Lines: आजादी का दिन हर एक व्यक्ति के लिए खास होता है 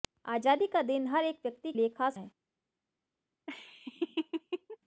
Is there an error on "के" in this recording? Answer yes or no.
yes